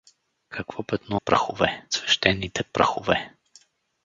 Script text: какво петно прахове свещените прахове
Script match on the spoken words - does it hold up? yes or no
yes